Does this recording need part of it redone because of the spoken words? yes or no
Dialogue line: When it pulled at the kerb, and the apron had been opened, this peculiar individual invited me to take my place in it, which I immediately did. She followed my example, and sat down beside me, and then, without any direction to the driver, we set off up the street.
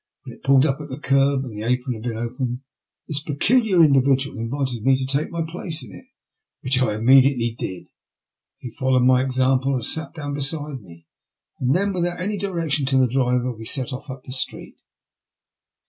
yes